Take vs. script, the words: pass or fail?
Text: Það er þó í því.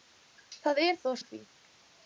pass